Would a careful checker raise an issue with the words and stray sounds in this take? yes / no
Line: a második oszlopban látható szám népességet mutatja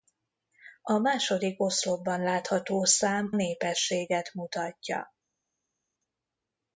no